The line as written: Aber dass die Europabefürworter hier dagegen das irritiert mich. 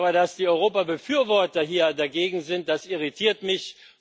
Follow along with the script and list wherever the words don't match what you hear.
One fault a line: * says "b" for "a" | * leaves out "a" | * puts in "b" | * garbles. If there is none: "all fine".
* puts in "sind"